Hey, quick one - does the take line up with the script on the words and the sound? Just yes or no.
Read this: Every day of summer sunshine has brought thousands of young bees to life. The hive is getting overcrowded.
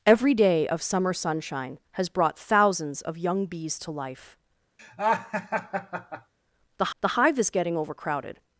no